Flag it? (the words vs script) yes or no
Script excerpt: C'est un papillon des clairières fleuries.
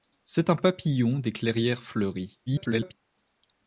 yes